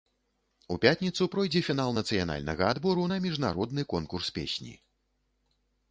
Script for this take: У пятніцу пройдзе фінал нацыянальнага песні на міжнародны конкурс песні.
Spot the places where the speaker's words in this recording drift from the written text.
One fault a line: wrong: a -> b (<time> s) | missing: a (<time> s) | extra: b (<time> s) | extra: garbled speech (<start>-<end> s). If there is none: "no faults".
wrong: песні -> адбору (2.7 s)